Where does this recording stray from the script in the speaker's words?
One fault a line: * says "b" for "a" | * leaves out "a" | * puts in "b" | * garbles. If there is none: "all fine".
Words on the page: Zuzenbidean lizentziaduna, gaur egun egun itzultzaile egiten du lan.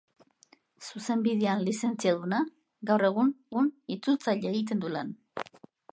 all fine